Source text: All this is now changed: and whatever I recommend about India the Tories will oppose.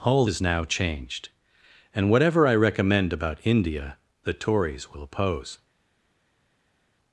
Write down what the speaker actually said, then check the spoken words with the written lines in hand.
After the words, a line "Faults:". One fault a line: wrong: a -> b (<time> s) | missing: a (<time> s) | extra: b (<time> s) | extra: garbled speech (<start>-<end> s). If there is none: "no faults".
All is now changed: and whatever I recommend about India the Tories will oppose.
Faults:
missing: this (0.2 s)